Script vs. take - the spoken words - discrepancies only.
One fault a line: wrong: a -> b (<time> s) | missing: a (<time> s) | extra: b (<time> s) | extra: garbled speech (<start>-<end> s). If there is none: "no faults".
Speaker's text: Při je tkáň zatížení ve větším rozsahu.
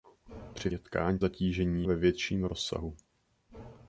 no faults